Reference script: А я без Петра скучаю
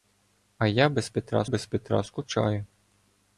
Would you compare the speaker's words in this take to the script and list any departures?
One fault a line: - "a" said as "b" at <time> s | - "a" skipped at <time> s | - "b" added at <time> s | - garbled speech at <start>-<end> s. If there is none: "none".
- "без Петра" added at 1.4 s